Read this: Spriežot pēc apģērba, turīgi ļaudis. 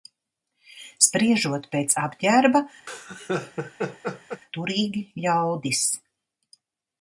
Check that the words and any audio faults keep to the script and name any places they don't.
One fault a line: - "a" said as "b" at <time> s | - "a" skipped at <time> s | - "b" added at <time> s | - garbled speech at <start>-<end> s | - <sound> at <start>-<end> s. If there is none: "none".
- laugh at 2.9-4.4 s